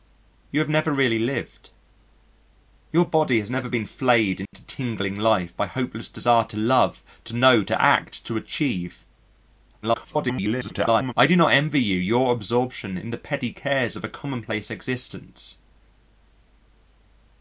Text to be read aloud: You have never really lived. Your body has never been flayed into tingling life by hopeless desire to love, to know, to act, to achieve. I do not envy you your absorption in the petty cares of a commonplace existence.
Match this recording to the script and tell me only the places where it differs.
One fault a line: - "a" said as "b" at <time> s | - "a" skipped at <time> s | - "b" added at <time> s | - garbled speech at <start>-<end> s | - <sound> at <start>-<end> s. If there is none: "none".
- dropout at 4.5-4.5 s
- garbled speech at 9.8-11.1 s